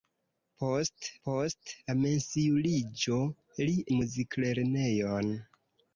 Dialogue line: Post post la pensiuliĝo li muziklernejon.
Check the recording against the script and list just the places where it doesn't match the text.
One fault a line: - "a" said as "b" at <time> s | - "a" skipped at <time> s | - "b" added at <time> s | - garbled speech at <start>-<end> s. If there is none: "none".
none